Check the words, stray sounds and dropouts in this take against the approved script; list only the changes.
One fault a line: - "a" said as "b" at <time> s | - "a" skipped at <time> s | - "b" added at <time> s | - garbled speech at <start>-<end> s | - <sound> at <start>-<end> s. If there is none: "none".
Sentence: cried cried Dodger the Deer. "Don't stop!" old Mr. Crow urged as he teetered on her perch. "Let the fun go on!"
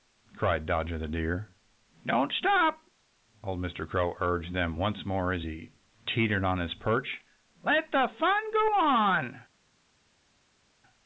- "cried" skipped at 0.7 s
- "them once more" added at 4.5 s
- "her" said as "his" at 6.6 s